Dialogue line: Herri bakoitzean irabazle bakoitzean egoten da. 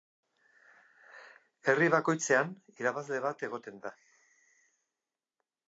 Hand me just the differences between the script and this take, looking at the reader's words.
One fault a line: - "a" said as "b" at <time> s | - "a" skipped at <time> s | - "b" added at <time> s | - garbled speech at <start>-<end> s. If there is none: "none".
- "bakoitzean" said as "bat" at 3.3 s